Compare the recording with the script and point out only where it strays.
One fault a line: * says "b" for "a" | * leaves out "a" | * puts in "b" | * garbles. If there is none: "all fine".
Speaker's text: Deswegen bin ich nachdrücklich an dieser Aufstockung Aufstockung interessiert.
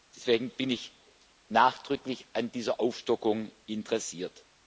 * leaves out "Aufstockung"